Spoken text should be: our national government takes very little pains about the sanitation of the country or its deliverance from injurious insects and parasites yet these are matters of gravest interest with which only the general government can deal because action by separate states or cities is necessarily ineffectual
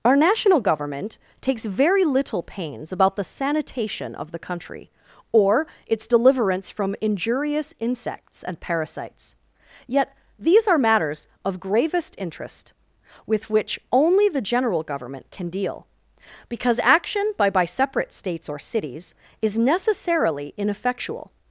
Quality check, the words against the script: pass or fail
fail